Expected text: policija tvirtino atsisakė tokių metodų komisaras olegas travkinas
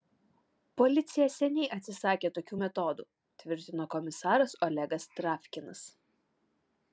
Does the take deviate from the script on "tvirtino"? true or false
true